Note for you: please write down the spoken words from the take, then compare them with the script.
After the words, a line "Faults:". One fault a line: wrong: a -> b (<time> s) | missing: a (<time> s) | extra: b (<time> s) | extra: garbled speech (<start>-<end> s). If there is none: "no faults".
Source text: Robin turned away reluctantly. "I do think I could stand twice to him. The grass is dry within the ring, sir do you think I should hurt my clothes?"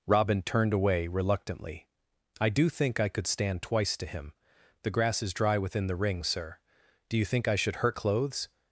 Robin turned away reluctantly. "I do think I could stand twice to him. The grass is dry within the ring, sir do you think I should hurt clothes?"
Faults:
missing: my (8.0 s)